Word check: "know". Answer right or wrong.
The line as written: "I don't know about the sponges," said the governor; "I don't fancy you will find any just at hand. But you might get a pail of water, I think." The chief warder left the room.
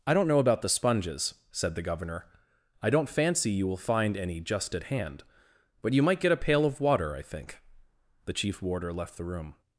right